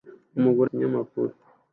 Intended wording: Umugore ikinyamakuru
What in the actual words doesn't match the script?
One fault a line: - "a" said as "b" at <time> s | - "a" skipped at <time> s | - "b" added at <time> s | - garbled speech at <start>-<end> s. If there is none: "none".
none